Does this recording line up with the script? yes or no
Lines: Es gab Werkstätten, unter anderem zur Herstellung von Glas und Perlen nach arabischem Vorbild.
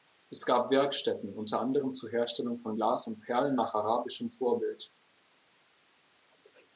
yes